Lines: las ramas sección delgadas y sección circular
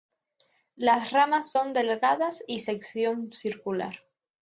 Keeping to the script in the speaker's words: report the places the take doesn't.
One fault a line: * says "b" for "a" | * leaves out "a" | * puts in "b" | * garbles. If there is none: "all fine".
* says "son" for "sección"